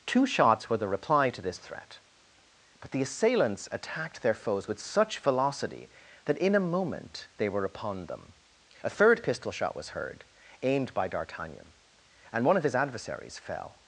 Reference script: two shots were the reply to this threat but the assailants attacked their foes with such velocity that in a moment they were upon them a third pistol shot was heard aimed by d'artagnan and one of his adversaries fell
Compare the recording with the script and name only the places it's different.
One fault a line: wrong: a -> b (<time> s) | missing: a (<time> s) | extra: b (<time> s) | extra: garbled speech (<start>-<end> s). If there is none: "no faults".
no faults